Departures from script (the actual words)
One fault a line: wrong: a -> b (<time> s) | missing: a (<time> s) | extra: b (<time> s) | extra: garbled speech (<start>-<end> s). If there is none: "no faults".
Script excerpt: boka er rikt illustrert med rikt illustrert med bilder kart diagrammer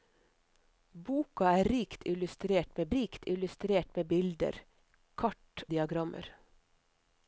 no faults